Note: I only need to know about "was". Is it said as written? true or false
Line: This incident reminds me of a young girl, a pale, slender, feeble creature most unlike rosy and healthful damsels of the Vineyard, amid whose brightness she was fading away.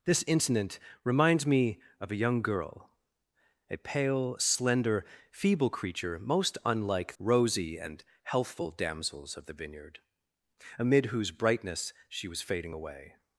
true